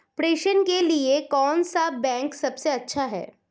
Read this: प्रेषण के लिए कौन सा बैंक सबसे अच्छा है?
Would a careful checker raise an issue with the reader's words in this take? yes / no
no